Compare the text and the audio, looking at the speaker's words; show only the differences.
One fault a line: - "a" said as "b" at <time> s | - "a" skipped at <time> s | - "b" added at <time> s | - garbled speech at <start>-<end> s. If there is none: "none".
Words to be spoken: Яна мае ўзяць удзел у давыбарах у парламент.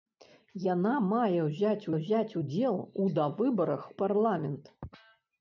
- "ўзяць" added at 2.0 s
- "у" skipped at 3.8 s